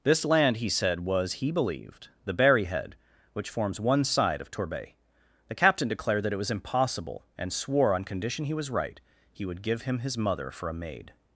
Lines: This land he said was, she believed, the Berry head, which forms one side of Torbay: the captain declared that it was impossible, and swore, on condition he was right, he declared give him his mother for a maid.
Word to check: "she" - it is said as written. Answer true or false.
false